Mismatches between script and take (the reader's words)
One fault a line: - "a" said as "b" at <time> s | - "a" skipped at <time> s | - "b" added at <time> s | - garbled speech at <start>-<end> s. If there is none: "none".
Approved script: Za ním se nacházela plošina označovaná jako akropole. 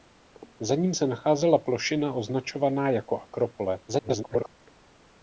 - garbled speech at 3.9-4.5 s